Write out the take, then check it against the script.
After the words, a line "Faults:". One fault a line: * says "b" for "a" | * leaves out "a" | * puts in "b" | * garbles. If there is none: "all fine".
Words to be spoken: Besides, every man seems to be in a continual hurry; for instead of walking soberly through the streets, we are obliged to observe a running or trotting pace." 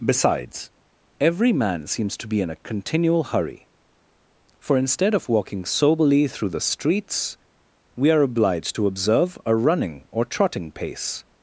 Besides, every man seems to be in a continual hurry; for instead of walking soberly through the streets, we are obliged to observe a running or trotting pace."
Faults:
all fine